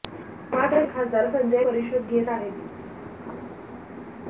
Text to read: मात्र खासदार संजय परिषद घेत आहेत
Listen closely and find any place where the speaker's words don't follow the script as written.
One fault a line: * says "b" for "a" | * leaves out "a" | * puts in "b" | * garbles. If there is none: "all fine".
all fine